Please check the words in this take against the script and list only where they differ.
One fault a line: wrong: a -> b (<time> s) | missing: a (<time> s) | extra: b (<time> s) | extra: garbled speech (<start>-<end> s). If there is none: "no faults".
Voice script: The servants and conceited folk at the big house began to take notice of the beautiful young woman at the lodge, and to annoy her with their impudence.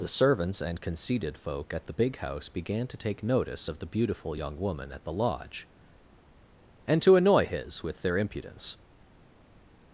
wrong: her -> his (7.5 s)